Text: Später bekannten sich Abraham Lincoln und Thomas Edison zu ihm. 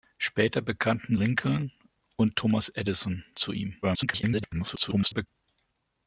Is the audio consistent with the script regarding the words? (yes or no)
no